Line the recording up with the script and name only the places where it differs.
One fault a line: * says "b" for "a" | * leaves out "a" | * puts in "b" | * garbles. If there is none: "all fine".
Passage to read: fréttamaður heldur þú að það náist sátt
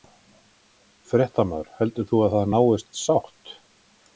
all fine